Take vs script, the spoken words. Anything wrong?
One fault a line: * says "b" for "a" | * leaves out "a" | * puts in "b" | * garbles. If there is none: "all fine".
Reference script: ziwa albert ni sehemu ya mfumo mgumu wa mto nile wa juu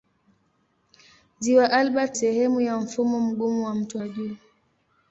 * leaves out "ni"
* leaves out "nile"